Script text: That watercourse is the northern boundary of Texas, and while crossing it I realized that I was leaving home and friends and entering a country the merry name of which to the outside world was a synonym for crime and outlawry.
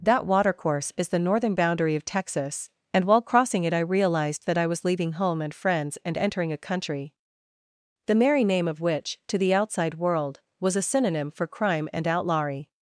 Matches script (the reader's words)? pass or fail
pass